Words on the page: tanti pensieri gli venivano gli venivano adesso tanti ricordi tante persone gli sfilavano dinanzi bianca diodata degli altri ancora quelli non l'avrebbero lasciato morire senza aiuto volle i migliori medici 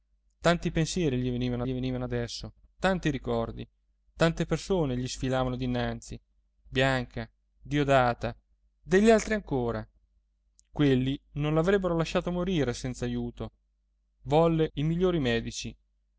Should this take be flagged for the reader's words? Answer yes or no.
no